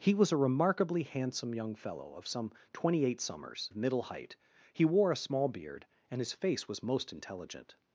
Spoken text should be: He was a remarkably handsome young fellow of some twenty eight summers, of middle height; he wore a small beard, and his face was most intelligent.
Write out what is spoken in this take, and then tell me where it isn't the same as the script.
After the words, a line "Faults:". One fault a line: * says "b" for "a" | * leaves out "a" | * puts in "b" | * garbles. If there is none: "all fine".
He was a remarkably handsome young fellow of some twenty eight summers, of middle height; he wore a small beard, and his face was most intelligent.
Faults:
all fine